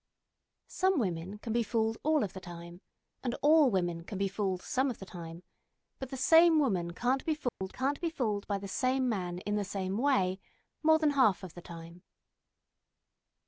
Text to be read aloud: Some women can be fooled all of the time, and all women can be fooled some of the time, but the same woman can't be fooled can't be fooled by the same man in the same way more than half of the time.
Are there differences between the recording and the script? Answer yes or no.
no